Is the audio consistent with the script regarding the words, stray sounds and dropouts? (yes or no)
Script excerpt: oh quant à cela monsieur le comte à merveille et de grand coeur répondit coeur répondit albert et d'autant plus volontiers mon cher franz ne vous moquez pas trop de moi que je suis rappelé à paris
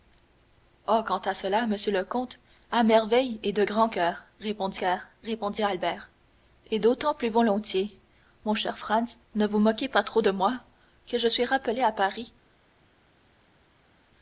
yes